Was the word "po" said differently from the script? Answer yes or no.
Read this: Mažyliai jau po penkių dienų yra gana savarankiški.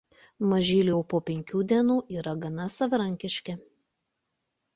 no